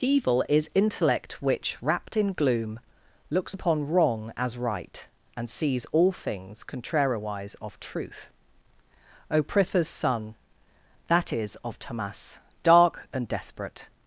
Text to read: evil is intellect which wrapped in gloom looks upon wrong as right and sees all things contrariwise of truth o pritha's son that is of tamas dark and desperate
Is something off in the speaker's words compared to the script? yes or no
no